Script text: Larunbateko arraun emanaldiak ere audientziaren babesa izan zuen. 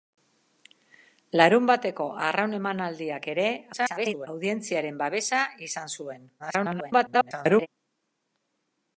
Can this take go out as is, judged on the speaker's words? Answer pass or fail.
fail